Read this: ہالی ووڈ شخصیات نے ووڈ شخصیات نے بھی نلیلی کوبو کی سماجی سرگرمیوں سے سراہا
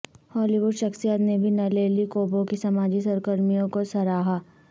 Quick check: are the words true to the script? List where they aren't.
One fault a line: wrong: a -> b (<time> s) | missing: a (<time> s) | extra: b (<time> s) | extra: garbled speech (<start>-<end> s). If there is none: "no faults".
missing: ووڈ شخصیات نے (1.4 s)
wrong: سے -> کو (3.7 s)